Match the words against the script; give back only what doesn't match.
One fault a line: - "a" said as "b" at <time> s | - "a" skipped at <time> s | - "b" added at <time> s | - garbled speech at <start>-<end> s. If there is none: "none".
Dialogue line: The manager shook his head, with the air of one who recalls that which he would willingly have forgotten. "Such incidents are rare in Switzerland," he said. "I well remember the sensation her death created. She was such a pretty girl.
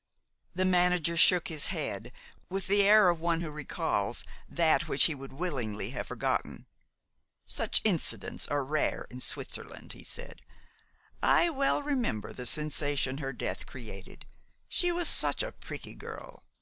none